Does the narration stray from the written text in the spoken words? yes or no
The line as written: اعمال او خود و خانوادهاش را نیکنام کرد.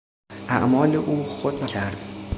yes